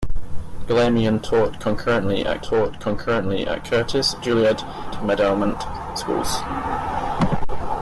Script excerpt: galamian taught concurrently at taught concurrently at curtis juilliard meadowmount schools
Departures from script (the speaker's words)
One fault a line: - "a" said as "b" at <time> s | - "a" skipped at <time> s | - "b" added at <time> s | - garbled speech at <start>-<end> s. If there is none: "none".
none